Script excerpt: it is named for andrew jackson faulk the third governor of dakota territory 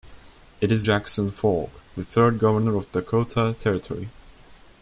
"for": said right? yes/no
no